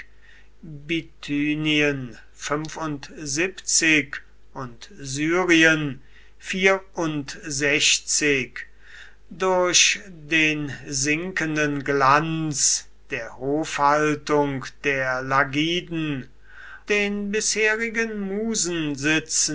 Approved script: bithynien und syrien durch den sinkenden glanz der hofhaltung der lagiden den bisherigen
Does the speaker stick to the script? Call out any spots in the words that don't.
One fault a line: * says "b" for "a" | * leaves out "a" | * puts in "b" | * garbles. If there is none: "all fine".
all fine